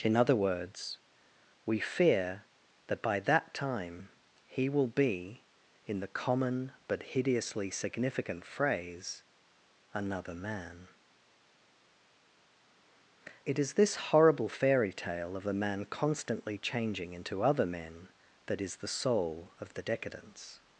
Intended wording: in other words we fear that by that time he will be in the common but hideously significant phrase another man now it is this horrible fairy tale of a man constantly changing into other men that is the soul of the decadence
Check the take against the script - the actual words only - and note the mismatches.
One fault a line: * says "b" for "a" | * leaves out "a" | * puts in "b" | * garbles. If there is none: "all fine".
* leaves out "now"